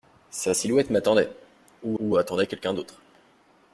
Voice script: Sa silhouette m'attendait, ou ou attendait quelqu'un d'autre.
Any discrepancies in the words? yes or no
no